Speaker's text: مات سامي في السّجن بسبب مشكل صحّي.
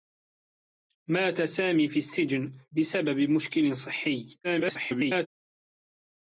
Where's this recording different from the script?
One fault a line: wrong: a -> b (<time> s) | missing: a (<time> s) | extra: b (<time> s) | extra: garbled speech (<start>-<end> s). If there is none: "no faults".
extra: garbled speech (4.4-5.3 s)